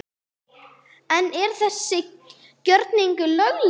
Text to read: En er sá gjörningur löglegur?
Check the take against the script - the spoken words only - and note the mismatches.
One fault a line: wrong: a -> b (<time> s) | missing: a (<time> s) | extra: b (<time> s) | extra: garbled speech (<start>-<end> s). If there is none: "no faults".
wrong: sá -> þessi (1.6 s)